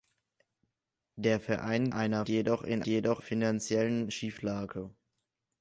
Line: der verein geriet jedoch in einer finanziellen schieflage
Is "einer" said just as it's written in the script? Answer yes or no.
no